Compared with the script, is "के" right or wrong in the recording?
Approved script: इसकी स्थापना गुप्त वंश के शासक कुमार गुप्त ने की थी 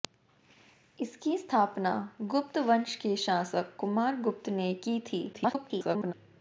right